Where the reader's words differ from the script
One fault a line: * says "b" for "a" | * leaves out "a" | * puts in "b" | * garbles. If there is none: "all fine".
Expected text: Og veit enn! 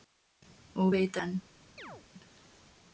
all fine